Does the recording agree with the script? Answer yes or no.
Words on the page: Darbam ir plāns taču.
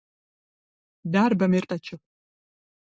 no